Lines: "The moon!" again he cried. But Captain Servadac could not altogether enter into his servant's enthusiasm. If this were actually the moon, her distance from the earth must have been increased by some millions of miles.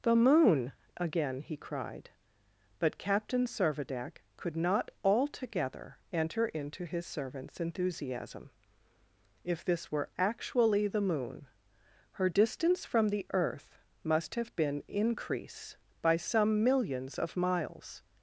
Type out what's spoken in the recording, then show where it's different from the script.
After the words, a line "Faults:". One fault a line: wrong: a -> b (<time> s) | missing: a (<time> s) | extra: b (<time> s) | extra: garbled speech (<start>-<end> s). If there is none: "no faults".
"The moon!" again he cried. But Captain Servadac could not altogether enter into his servant's enthusiasm. If this were actually the moon, her distance from the earth must have been increase by some millions of miles.
Faults:
wrong: increased -> increase (14.9 s)